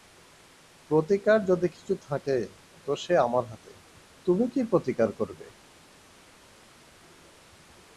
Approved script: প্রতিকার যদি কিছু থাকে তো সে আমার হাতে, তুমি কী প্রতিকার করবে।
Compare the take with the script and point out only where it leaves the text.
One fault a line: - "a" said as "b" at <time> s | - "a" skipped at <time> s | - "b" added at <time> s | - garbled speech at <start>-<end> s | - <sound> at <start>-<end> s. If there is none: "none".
none